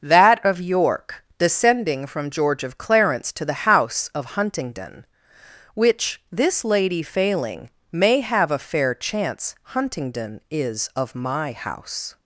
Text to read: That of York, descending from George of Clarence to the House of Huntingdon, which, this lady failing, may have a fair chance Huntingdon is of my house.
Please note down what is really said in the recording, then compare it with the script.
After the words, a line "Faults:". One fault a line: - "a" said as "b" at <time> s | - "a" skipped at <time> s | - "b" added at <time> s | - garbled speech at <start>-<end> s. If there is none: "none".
That of York, descending from George of Clarence to the House of Huntingdon, which, this lady failing, may have a fair chance Huntingdon is of my house.
Faults:
none